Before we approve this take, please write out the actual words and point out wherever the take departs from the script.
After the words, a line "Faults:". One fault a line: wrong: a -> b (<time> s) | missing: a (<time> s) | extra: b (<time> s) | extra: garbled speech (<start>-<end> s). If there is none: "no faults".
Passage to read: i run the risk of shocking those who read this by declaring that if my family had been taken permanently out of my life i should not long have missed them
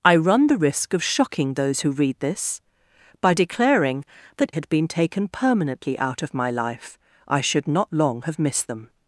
i run the risk of shocking those who read this by declaring that had been taken permanently out of my life i should not long have missed them
Faults:
missing: if my family (4.5 s)